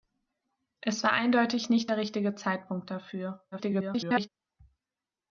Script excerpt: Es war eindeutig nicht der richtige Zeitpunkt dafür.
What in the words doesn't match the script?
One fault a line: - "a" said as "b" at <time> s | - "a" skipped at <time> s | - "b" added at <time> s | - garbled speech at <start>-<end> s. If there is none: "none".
- garbled speech at 3.5-4.3 s